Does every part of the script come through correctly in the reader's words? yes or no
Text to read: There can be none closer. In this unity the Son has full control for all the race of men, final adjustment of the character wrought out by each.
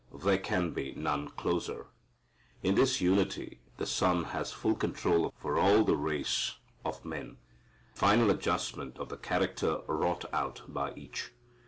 yes